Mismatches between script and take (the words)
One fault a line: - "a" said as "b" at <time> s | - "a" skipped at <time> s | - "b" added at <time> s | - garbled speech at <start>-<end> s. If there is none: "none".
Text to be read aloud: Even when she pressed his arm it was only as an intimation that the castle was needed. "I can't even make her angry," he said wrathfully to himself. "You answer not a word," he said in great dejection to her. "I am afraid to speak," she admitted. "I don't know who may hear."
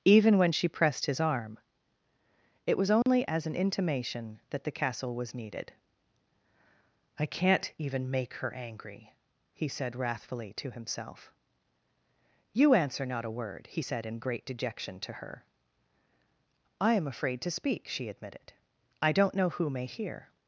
none